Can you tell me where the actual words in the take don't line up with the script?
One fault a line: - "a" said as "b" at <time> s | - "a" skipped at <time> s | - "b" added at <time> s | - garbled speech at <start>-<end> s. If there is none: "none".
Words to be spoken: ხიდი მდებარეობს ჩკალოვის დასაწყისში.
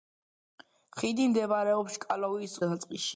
none